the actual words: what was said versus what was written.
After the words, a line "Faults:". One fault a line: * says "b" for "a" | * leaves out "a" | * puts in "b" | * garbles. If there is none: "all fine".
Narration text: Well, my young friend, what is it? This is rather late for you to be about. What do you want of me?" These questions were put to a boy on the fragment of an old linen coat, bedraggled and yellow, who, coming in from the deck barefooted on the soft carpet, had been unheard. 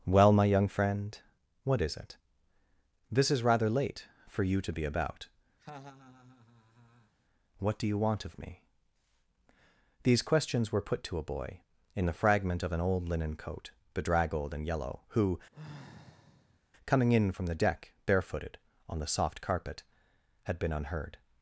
Well, my young friend, what is it? This is rather late for you to be about. What do you want of me?" These questions were put to a boy in the fragment of an old linen coat, bedraggled and yellow, who, coming in from the deck barefooted on the soft carpet, had been unheard.
Faults:
* says "in" for "on"